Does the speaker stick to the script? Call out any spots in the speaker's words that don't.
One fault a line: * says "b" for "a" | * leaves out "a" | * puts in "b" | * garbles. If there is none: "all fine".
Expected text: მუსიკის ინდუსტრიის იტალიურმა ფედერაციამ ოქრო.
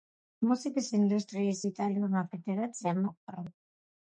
all fine